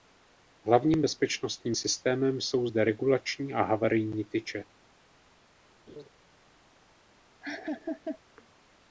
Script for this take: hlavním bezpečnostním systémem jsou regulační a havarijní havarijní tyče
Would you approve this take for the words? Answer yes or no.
no